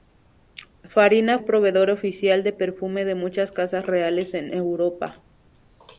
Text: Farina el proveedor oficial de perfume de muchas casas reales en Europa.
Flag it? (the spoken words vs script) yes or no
no